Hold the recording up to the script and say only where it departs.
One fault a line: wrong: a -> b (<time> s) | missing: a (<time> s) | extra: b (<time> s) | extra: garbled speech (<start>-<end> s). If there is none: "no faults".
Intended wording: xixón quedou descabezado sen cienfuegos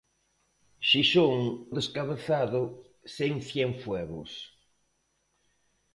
missing: quedou (1.4 s)